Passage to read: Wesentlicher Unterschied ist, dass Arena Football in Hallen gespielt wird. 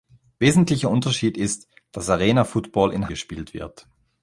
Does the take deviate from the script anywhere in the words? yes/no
yes